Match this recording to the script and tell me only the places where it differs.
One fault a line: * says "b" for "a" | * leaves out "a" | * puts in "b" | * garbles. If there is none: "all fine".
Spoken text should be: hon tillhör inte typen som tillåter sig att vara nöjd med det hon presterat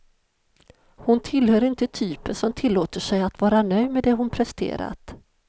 all fine